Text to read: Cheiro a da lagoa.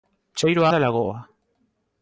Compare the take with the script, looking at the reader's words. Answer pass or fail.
pass